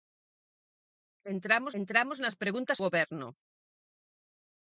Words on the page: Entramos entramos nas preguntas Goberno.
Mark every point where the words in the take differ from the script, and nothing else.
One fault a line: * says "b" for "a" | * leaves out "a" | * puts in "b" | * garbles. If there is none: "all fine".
all fine